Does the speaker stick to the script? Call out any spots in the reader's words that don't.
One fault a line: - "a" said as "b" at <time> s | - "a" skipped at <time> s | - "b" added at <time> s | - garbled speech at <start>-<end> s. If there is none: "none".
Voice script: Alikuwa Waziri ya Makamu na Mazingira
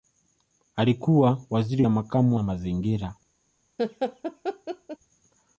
none